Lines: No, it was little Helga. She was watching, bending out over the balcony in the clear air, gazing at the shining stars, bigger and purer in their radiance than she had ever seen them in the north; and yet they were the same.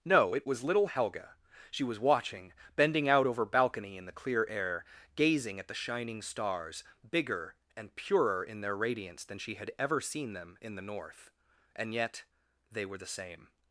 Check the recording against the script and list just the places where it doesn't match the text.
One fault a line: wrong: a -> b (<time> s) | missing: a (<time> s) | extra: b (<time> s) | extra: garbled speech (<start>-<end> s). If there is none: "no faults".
missing: the (3.4 s)